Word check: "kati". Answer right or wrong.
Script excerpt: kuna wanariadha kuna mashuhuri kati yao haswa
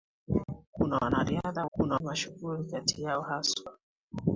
right